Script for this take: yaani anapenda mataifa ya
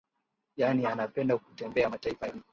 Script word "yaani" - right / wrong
right